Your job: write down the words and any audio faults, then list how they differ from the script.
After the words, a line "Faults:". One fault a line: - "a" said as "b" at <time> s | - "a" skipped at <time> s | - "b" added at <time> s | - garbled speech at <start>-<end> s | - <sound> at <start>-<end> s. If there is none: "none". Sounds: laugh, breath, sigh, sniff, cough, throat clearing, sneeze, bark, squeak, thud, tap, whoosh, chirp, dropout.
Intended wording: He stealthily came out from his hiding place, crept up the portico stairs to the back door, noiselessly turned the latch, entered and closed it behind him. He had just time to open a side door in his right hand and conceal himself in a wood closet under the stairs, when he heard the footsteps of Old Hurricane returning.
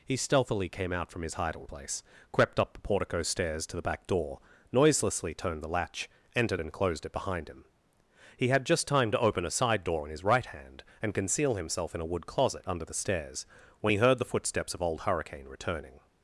He stealthily came out from his hiding place, crept up the portico stairs to the back door, noiselessly turned the latch, entered and closed it behind him. He had just time to open a side door in his right hand and conceal himself in a wood closet under the stairs, when he heard the footsteps of Old Hurricane returning.
Faults:
none